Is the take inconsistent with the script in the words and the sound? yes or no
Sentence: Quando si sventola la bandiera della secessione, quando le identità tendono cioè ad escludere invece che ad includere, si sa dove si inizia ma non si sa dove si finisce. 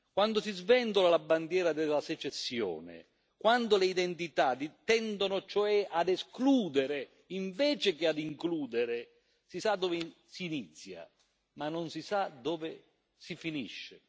no